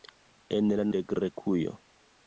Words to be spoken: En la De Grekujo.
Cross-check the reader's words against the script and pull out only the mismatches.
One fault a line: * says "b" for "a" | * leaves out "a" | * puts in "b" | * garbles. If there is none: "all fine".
all fine